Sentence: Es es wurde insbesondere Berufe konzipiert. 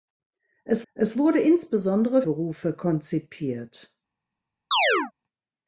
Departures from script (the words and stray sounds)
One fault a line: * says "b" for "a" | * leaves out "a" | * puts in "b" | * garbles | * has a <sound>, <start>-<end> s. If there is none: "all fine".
* has a chirp, 4.7-5.1 s